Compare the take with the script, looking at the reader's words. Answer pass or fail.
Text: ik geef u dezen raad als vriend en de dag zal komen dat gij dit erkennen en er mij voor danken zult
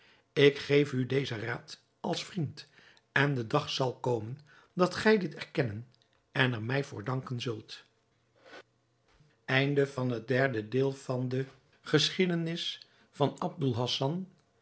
pass